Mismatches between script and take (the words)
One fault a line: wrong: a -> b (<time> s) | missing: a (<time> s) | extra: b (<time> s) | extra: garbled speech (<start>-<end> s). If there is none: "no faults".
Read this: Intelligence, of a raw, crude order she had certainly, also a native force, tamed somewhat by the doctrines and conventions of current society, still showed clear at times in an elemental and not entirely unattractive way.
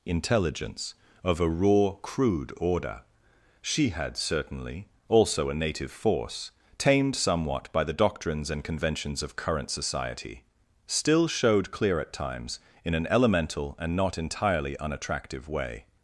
no faults